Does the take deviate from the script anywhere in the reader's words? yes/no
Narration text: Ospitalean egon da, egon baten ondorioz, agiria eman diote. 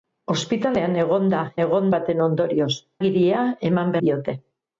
no